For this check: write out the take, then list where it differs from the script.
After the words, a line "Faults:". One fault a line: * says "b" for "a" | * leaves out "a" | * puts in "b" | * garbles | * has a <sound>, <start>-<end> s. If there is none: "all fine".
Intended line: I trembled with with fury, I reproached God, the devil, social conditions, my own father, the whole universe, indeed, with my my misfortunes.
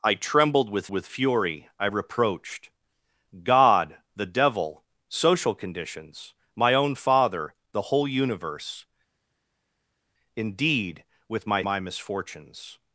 I trembled with with fury, I reproached God, the devil, social conditions, my own father, the whole universe, indeed, with my my misfortunes.
Faults:
all fine